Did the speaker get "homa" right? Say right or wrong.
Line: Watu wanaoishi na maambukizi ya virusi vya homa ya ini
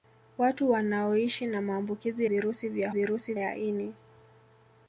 wrong